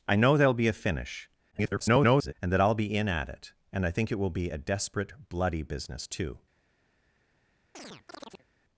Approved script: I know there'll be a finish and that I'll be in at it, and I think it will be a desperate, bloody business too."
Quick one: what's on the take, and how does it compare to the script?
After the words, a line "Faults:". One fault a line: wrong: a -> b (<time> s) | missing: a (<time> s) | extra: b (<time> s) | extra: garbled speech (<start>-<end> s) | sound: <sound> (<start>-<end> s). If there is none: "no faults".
I know there'll be a finish [garbled] and that I'll be in at it, and I think it will be a desperate, bloody business too."
Faults:
extra: garbled speech (1.5-2.3 s)
sound: chirp (7.7-8.5 s)